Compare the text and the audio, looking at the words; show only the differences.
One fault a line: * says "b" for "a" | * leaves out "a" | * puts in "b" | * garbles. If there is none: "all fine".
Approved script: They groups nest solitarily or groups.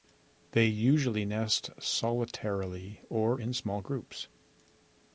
* says "usually" for "groups"
* puts in "in small"